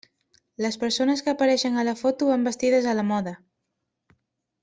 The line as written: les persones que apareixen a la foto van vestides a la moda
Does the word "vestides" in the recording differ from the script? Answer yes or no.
no